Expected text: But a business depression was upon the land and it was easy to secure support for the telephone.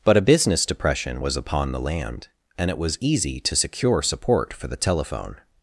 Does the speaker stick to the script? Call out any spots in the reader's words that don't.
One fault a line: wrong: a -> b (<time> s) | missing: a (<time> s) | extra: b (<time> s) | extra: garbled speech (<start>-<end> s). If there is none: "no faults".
no faults